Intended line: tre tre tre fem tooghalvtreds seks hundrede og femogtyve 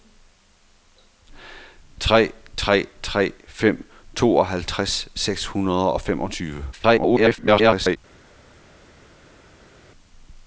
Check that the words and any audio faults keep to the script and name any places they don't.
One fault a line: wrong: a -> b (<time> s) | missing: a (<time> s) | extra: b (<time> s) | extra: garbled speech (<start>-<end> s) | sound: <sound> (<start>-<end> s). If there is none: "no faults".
extra: garbled speech (6.7-8.0 s)